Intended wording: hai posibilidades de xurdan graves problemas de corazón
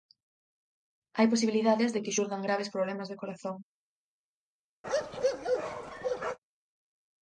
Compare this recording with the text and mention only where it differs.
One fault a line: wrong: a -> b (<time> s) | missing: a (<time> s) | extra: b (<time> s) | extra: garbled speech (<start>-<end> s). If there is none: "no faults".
extra: que (2.0 s)